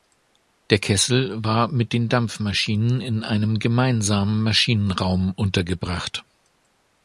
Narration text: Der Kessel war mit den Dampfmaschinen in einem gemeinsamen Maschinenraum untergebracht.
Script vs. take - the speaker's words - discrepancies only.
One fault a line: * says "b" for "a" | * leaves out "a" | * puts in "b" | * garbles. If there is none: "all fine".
all fine